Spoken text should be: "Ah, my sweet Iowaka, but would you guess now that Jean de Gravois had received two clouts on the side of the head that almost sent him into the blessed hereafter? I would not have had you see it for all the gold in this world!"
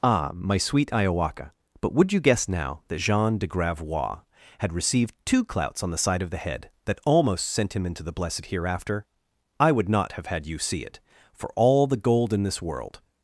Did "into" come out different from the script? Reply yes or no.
no